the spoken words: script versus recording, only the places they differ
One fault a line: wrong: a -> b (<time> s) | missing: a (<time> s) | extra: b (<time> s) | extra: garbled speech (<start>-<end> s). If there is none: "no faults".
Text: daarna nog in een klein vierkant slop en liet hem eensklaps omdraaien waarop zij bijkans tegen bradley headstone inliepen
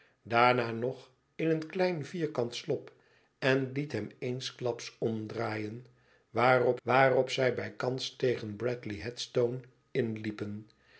extra: waarop (6.8 s)